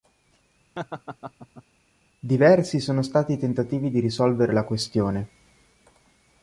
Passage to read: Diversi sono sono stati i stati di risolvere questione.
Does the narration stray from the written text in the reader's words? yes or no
yes